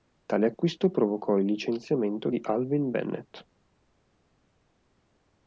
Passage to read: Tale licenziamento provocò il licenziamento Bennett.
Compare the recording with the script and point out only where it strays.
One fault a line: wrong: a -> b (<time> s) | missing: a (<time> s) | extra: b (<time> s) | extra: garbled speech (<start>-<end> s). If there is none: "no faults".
wrong: licenziamento -> acquisto (0.5 s)
extra: di Alvin (2.3 s)